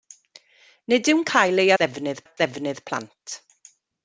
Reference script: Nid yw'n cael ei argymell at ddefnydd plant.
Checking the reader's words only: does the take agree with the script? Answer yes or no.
no